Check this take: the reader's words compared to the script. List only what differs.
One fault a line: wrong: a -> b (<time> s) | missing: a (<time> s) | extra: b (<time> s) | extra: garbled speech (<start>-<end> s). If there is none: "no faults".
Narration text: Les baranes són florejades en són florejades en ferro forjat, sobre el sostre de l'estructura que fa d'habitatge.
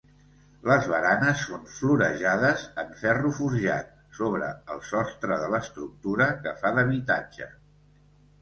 missing: són florejades en (3.0 s)